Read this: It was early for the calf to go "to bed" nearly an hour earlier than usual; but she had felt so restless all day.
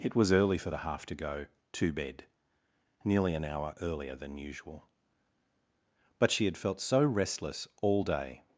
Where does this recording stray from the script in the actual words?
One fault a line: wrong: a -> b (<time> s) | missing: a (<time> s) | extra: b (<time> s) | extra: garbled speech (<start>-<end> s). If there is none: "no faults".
wrong: calf -> half (0.8 s)